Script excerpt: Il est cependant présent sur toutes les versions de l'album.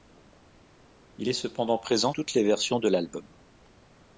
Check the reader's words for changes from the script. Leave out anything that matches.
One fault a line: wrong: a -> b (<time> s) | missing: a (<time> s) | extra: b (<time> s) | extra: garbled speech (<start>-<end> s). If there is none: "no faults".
missing: sur (2.1 s)